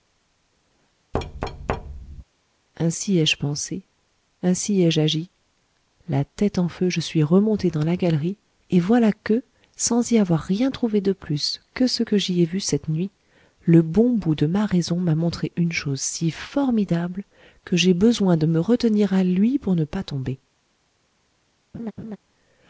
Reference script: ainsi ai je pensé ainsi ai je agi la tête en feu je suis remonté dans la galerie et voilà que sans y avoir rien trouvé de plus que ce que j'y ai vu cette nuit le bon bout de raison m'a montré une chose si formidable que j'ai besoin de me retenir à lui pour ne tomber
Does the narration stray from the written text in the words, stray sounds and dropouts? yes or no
yes